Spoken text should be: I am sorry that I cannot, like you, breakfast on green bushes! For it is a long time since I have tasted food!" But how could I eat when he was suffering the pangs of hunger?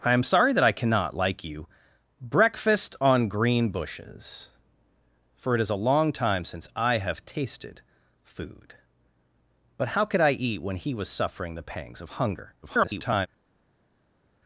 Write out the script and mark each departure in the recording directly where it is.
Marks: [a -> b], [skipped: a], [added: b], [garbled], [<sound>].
I am sorry that I cannot, like you, breakfast on green bushes! For it is a long time since I have tasted food!" But how could I eat when he was suffering the pangs of hunger? [garbled]